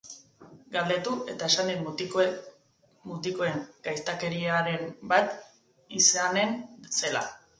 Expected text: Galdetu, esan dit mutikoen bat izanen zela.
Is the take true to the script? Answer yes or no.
no